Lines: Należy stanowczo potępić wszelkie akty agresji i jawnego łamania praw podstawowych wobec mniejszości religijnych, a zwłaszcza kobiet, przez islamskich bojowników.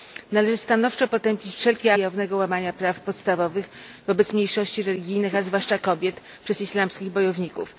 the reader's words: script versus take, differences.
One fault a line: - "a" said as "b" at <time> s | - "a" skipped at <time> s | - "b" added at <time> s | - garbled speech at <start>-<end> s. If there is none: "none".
- "akty agresji" skipped at 1.9 s